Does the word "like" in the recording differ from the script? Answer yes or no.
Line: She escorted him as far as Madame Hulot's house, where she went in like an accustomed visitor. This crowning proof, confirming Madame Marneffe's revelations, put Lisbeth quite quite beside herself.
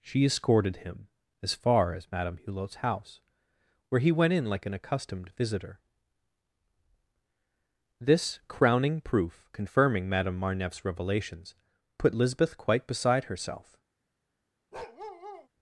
no